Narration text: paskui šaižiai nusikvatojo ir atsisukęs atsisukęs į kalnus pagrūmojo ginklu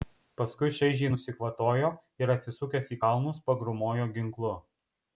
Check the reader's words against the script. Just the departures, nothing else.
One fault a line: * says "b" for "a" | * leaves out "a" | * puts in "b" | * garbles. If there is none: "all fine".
* leaves out "atsisukęs"